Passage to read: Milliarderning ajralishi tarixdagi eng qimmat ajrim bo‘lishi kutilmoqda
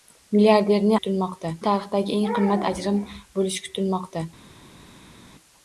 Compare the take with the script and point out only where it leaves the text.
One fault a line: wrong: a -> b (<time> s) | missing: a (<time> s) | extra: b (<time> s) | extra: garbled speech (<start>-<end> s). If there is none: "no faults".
wrong: ajralishi -> kutilmoqda (1.0 s)